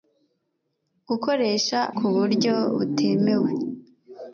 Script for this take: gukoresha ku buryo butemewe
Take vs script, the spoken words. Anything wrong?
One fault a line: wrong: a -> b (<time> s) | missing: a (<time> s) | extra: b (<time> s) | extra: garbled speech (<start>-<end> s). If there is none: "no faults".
no faults